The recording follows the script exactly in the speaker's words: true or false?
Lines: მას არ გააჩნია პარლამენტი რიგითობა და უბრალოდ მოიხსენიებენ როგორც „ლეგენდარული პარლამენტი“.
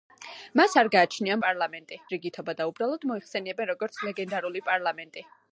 true